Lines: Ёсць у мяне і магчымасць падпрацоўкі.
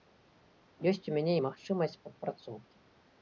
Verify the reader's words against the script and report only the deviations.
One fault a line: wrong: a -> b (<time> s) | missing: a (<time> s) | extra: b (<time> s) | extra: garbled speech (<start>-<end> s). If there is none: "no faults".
no faults